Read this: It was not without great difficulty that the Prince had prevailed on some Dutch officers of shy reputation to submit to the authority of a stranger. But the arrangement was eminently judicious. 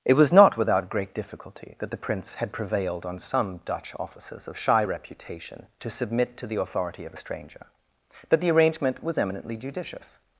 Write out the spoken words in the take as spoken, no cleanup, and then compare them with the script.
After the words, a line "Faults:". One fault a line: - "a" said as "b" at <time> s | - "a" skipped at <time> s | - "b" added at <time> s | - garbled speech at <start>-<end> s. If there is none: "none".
It was not without great difficulty that the Prince had prevailed on some Dutch officers of shy reputation to submit to the authority of a stranger. But the arrangement was eminently judicious.
Faults:
none